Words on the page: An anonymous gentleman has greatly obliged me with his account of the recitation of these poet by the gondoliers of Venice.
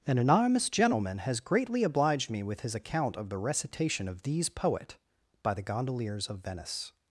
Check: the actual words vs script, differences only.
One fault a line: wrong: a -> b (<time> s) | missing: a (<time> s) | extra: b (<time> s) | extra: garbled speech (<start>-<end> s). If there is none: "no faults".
no faults